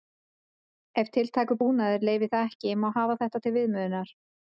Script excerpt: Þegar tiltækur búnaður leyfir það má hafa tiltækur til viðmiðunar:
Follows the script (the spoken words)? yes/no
no